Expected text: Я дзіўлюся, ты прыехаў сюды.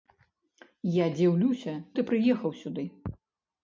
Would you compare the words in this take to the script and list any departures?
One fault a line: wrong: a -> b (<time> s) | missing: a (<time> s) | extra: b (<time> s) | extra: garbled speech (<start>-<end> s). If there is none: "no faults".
no faults